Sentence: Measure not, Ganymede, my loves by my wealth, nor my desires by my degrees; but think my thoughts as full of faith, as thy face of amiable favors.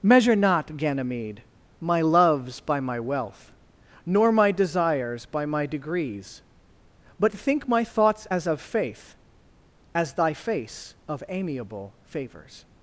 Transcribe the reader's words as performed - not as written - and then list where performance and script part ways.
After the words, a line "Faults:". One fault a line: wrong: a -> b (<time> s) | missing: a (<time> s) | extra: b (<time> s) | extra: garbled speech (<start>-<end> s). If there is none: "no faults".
Measure not, Ganymede, my loves by my wealth, nor my desires by my degrees; but think my thoughts as of faith, as thy face of amiable favors.
Faults:
missing: full (8.5 s)